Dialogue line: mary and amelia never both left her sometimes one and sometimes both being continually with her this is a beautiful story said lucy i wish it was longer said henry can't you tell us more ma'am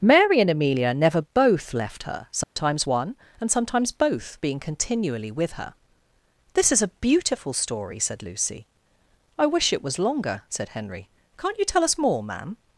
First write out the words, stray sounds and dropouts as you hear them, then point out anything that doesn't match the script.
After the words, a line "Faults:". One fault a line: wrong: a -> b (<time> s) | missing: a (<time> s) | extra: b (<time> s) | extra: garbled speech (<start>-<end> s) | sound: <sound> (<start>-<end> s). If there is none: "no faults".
mary and amelia never both left her sometimes one and sometimes both being continually with her this is a beautiful story said lucy i wish it was longer said henry can't you tell us more ma'am
Faults:
sound: dropout (2.4-2.6 s)